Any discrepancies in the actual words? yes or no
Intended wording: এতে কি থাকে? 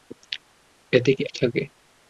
no